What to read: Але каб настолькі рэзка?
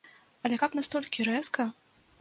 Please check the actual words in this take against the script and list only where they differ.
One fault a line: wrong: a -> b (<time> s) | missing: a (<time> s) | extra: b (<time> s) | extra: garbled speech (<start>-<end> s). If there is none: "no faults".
no faults